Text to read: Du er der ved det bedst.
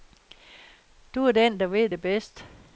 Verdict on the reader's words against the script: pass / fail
fail